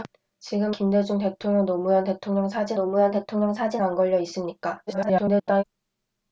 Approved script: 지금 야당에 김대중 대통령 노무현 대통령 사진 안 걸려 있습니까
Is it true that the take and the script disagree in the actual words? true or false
true